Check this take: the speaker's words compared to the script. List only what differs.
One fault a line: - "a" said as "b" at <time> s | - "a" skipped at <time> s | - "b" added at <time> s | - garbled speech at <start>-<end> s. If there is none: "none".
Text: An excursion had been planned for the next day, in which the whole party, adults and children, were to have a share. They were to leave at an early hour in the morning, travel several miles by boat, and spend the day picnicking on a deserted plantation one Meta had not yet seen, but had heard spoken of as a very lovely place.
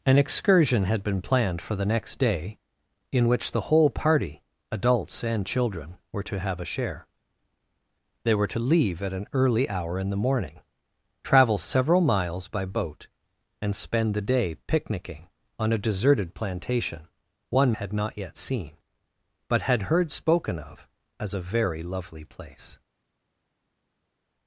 - "Meta" skipped at 17.8 s